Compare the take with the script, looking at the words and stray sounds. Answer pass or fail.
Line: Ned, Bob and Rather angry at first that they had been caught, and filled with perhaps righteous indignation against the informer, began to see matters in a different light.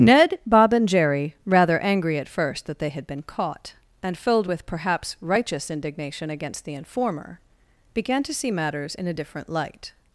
fail